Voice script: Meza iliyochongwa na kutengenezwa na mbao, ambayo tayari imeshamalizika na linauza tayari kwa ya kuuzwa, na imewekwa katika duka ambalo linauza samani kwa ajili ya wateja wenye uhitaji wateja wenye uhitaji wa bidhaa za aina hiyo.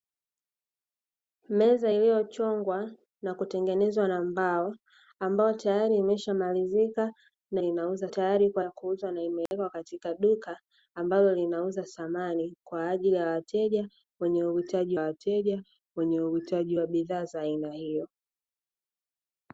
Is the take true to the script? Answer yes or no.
yes